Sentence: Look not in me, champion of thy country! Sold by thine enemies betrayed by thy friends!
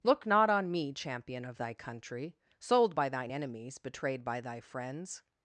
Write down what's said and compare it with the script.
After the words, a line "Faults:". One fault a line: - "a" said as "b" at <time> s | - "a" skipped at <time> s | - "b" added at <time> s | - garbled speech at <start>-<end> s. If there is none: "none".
Look not on me, champion of thy country! Sold by thine enemies betrayed by thy friends!
Faults:
- "in" said as "on" at 0.5 s